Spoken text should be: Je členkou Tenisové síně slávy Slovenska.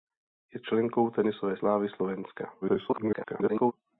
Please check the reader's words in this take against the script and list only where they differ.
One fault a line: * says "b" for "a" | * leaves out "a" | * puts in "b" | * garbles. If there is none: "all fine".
* leaves out "síně"
* garbles